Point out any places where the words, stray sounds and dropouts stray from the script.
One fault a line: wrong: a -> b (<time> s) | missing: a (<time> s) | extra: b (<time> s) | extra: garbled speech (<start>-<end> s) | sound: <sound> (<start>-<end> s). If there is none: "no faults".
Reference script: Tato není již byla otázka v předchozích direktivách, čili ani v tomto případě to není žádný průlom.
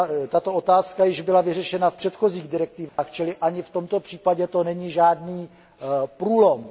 wrong: není -> otázka (0.5 s)
wrong: otázka -> vyřešena (1.4 s)
sound: dropout (2.9-3.0 s)